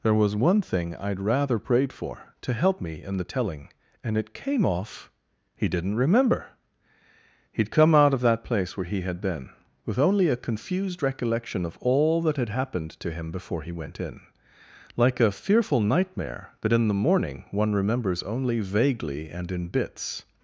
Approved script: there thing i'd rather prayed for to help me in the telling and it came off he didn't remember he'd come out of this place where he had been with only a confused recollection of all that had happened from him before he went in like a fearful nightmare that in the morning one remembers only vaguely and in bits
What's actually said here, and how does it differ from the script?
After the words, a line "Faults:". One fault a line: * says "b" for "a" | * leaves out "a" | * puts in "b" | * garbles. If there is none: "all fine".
there was one thing i'd rather prayed for to help me in the telling and it came off he didn't remember he'd come out of that place where he had been with only a confused recollection of all that had happened to him before he went in like a fearful nightmare that in the morning one remembers only vaguely and in bits
Faults:
* puts in "was one"
* says "that" for "this"
* says "to" for "from"